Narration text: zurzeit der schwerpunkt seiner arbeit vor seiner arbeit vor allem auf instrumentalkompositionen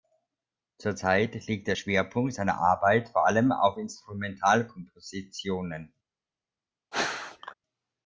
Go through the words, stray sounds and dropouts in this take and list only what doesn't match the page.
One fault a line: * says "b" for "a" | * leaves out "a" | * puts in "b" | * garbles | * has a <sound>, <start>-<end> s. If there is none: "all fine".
* puts in "liegt"
* leaves out "seiner arbeit vor"
* has a sneeze, 6.9-7.5 s